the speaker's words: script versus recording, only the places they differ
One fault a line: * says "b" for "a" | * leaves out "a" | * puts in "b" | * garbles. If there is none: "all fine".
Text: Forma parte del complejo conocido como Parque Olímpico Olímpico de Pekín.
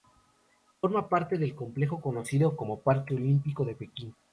* leaves out "Olímpico"